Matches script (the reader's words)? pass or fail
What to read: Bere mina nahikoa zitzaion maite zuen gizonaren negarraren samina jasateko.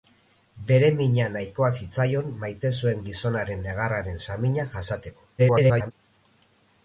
fail